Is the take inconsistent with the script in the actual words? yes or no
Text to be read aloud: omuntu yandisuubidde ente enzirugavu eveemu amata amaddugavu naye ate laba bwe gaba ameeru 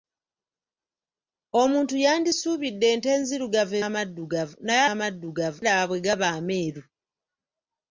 yes